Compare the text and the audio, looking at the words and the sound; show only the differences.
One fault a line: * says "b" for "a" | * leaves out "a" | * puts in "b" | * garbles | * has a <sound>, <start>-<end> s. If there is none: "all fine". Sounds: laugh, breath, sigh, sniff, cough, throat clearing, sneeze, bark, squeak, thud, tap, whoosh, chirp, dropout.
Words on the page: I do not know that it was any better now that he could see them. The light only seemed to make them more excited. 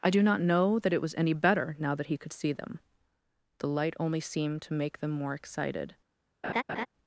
* has a laugh, 6.4-6.9 s